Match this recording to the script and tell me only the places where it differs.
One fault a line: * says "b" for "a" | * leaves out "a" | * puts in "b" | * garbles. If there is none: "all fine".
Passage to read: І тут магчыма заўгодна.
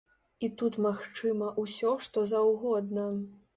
* puts in "ўсё што"